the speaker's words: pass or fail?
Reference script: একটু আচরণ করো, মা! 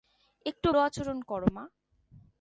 pass